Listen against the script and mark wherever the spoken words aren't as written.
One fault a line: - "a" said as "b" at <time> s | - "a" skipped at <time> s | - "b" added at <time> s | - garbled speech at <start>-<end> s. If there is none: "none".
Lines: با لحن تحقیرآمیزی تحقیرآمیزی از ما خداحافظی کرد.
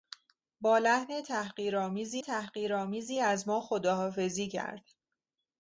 none